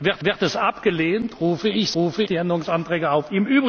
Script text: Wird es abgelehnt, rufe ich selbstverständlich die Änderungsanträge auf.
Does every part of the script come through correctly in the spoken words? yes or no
no